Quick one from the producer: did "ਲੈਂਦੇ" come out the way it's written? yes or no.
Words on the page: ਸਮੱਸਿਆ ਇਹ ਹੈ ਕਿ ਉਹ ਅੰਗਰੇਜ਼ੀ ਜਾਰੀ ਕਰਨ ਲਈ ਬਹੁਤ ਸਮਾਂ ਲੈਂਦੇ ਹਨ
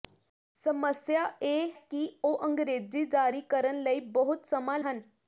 no